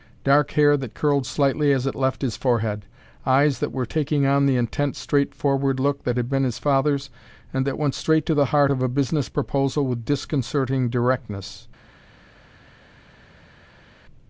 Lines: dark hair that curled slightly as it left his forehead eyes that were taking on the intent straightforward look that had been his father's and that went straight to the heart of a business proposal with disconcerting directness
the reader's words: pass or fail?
pass